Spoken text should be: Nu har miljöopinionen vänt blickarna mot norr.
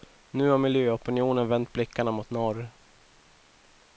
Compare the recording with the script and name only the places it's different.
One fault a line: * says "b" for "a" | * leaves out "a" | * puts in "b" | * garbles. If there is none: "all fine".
all fine